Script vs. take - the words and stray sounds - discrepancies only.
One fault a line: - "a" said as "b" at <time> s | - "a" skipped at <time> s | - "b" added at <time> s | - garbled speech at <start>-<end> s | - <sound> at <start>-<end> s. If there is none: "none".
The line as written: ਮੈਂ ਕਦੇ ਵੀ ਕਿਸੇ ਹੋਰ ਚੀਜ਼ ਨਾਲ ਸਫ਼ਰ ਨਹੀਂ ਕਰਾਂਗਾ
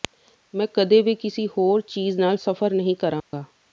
- dropout at 3.2-3.3 s